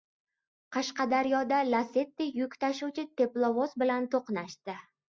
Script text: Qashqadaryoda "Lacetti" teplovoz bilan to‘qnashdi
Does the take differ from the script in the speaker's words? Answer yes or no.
yes